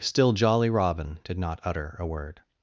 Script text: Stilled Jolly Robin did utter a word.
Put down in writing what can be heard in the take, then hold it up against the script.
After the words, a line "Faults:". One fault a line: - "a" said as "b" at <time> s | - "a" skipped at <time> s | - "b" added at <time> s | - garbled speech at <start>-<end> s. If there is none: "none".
Still Jolly Robin did not utter a word.
Faults:
- "Stilled" said as "Still" at 0.0 s
- "not" added at 1.4 s